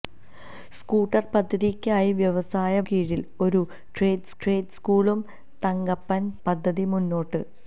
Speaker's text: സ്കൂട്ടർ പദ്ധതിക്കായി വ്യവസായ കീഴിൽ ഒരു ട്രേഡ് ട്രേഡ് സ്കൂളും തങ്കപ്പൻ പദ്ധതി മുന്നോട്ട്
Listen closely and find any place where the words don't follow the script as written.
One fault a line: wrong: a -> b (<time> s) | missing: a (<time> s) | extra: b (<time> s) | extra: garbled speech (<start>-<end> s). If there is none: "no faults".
no faults